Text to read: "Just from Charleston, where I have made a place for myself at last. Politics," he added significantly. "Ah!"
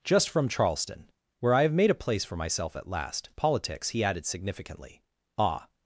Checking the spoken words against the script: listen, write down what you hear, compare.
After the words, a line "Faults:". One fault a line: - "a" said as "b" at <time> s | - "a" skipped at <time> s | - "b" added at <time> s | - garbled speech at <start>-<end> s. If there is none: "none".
"Just from Charleston, where I have made a place for myself at last. Politics," he added significantly. "Ah!"
Faults:
none